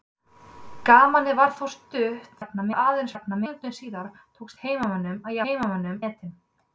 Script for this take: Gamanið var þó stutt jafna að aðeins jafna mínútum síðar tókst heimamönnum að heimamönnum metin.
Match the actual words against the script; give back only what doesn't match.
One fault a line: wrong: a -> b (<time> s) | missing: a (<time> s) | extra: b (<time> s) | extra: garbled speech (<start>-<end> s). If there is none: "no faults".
no faults